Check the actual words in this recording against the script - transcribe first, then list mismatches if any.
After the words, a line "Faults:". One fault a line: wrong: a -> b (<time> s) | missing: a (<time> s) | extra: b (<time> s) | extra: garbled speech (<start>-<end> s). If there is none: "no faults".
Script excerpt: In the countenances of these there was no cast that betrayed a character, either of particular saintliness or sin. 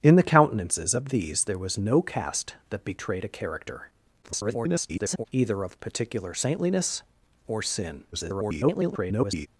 In the countenances of these there was no cast that betrayed a character, [garbled] either of particular saintliness or sin. [garbled]
Faults:
extra: garbled speech (4.2-5.3 s)
extra: garbled speech (8.1-9.5 s)